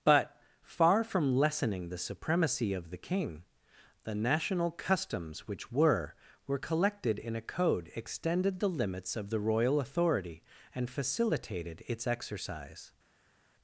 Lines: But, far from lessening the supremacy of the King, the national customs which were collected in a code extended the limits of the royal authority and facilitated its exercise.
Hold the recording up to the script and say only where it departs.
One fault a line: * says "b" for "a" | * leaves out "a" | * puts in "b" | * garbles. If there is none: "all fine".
* puts in "were"